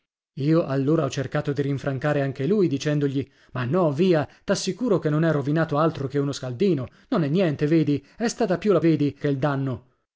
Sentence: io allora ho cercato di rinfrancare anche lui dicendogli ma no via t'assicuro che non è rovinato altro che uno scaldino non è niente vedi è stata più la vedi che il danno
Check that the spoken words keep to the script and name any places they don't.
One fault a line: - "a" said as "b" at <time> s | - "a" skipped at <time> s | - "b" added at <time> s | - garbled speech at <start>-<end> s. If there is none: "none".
none